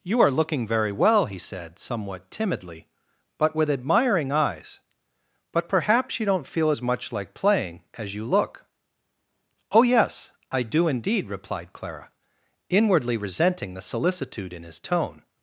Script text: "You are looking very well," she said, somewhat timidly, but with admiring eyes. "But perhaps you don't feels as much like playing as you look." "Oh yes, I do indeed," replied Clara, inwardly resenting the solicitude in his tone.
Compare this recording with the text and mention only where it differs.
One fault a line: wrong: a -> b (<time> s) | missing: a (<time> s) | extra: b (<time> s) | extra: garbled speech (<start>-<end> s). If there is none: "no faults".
wrong: she -> he (1.3 s)
wrong: feels -> feel (6.5 s)